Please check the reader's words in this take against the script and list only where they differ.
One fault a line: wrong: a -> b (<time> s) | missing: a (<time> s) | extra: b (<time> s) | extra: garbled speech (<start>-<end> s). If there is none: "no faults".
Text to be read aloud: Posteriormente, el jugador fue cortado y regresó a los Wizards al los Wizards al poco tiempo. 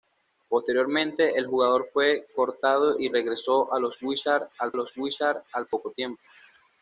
no faults